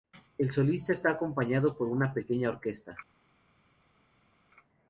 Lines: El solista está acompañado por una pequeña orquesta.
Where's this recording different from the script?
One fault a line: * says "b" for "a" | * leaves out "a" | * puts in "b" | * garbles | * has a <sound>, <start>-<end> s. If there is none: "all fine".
all fine